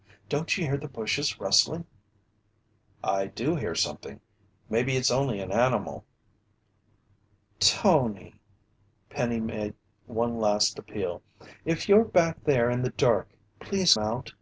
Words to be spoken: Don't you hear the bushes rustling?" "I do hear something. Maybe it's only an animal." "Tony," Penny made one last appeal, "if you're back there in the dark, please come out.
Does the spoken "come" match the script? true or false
false